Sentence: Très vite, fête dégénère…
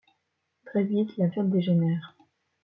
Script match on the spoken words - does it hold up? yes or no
no